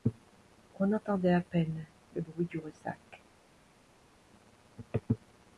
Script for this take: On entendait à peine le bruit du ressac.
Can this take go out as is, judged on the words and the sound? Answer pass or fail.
pass